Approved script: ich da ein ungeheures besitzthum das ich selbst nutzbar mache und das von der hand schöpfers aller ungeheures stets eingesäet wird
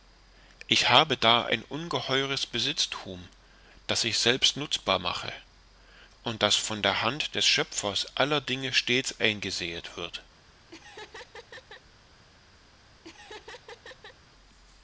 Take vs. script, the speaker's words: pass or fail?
fail